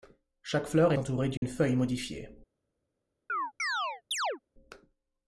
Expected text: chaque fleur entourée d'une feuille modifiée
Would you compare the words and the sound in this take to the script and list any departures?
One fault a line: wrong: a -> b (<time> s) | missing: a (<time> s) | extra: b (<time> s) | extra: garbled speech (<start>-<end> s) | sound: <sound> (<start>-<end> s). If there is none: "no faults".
sound: dropout (1.4-1.4 s)
sound: chirp (3.3-4.4 s)